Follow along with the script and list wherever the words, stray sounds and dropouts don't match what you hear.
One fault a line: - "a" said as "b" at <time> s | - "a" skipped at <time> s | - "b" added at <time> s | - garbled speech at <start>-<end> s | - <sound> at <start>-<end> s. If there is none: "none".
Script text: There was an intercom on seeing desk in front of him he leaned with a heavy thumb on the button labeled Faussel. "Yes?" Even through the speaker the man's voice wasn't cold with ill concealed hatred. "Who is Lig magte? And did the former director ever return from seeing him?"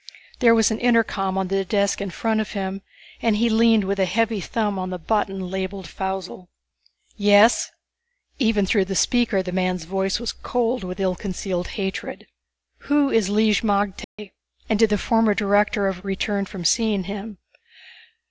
- "seeing" said as "the" at 1.5 s
- "and" added at 3.2 s
- "wasn't" said as "was" at 10.2 s
- dropout at 14.0-14.2 s